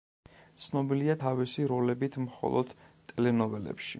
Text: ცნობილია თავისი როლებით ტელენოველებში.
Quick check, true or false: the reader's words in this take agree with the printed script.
false